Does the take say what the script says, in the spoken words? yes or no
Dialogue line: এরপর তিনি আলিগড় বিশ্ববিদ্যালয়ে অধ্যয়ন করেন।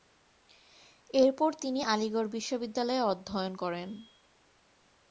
yes